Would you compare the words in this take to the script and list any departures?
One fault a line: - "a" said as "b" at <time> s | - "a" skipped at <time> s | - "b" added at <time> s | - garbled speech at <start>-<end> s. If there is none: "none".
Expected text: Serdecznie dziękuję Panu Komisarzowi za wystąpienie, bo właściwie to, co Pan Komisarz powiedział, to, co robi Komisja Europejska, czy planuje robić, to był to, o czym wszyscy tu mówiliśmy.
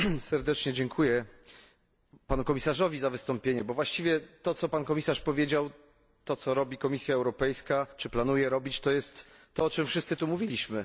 - "był" said as "jest" at 8.9 s